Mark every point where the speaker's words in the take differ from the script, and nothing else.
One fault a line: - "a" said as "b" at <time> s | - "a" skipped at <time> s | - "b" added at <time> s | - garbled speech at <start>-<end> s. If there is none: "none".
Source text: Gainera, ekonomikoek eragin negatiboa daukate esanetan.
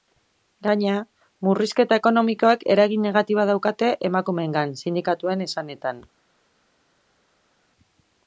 - "murrizketa" added at 1.5 s
- "emakumeengan sindikatuen" added at 4.1 s